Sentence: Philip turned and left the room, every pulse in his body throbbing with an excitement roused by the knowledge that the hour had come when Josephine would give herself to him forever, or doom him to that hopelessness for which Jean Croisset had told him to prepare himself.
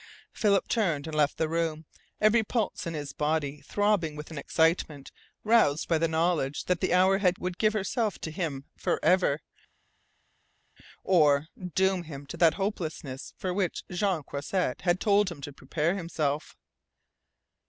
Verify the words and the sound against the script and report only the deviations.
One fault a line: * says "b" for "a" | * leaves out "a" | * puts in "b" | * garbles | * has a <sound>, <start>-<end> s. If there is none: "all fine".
* leaves out "come when Josephine"